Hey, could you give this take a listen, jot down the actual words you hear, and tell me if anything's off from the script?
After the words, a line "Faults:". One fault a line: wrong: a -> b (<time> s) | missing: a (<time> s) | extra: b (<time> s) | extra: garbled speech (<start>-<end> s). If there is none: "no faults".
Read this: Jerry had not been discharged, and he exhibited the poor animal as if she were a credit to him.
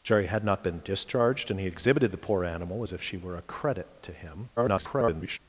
Jerry had not been discharged, and he exhibited the poor animal as if she were a credit to him. [garbled]
Faults:
extra: garbled speech (4.6-5.4 s)